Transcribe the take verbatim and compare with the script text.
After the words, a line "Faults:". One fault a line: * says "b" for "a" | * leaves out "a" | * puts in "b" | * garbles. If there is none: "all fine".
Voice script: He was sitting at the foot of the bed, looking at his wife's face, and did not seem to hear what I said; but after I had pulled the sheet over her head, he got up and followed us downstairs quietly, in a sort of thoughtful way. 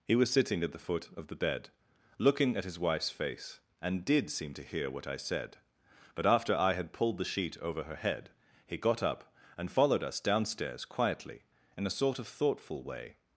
He was sitting at the foot of the bed, looking at his wife's face, and did seem to hear what I said; but after I had pulled the sheet over her head, he got up and followed us downstairs quietly, in a sort of thoughtful way.
Faults:
* leaves out "not"